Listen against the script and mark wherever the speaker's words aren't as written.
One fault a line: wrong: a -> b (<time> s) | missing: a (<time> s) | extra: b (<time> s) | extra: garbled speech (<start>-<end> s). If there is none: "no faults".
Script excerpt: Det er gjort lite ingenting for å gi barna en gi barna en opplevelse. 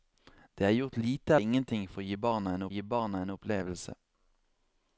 no faults